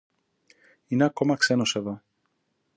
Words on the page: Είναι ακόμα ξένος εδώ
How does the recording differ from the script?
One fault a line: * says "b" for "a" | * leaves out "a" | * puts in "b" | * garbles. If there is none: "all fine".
all fine